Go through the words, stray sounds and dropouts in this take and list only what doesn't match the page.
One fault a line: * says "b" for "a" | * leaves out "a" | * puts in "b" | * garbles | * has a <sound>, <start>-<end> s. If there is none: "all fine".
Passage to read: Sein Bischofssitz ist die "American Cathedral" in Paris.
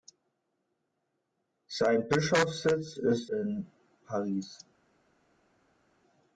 * leaves out "die American Cathedral"